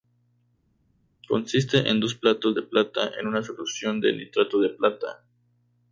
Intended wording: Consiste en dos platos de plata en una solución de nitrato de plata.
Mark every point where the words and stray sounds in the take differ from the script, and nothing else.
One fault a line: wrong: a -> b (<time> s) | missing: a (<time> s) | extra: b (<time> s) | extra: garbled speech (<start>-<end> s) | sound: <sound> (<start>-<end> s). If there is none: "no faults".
no faults